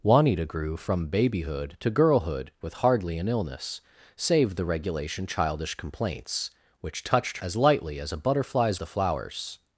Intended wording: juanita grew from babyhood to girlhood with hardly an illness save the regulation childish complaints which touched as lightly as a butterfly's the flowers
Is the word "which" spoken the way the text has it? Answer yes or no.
yes